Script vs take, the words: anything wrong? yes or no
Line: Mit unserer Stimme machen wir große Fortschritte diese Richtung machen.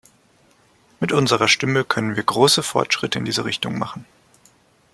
yes